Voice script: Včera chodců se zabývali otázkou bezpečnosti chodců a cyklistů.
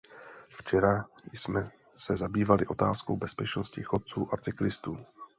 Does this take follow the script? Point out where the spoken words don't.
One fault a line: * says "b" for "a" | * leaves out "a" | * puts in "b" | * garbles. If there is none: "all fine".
* says "jsme" for "chodců"